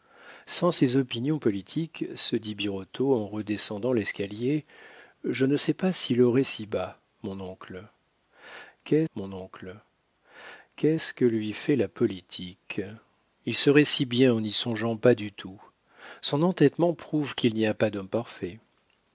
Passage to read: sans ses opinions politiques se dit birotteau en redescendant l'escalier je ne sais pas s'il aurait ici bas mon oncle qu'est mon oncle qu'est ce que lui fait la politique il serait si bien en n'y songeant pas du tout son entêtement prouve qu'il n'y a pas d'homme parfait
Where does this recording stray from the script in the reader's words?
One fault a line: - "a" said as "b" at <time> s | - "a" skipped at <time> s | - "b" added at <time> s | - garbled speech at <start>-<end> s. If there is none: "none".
none